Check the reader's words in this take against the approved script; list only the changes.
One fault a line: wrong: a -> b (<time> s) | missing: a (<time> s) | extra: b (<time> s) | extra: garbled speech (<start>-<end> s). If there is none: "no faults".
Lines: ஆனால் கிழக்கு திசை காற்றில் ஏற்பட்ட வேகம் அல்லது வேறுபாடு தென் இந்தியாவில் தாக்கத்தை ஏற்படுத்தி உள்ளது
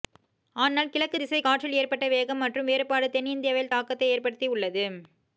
wrong: அல்லது -> மற்றும் (2.4 s)